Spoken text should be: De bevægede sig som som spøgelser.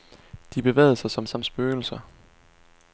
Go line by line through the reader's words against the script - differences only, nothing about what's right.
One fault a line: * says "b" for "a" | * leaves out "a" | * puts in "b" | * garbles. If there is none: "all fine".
all fine